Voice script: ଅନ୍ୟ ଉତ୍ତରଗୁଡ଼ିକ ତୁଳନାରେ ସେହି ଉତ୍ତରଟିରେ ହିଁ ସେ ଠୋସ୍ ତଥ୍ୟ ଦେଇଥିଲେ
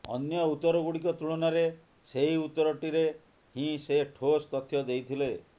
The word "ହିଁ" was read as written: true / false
true